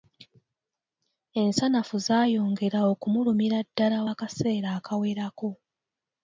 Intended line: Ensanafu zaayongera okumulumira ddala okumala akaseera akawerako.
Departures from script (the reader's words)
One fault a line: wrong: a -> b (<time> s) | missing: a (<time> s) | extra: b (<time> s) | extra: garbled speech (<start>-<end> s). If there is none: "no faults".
missing: okumala (4.0 s)